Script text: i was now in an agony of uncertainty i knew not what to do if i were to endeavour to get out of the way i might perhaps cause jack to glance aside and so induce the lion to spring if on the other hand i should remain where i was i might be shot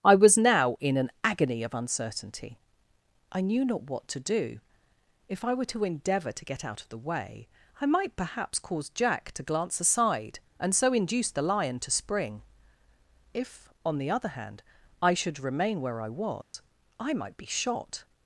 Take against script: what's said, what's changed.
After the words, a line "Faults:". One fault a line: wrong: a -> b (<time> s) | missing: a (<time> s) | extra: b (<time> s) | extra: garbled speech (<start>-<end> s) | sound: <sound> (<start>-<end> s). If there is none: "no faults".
i was now in an agony of uncertainty i knew not what to do if i were to endeavour to get out of the way i might perhaps cause jack to glance aside and so induce the lion to spring if on the other hand i should remain where i was i might be shot
Faults:
sound: dropout (16.4-16.5 s)